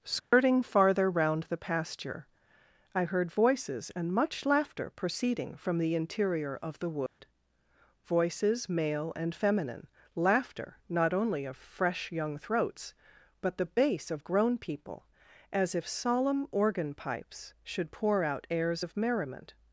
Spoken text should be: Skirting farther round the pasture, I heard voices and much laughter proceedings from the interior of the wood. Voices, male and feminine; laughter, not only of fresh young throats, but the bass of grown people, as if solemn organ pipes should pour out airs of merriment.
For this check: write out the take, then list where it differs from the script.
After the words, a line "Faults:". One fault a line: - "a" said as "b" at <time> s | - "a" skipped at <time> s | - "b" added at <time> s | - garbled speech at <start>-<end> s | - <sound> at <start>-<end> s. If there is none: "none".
Skirting farther round the pasture, I heard voices and much laughter proceeding from the interior of the wood. Voices, male and feminine; laughter, not only of fresh young throats, but the bass of grown people, as if solemn organ pipes should pour out airs of merriment.
Faults:
- dropout at 0.2-0.3 s
- "proceedings" said as "proceeding" at 4.9 s
- dropout at 7.1-7.2 s